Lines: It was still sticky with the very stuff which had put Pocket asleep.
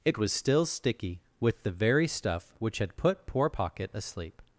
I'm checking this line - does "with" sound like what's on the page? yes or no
yes